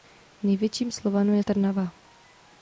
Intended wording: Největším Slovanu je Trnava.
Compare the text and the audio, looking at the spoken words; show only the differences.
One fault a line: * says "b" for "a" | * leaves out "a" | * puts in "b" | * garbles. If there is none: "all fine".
all fine